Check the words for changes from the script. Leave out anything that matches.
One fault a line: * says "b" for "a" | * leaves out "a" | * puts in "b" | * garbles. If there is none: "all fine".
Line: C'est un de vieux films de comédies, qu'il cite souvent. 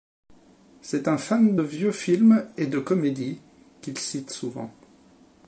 * puts in "fan"
* puts in "et"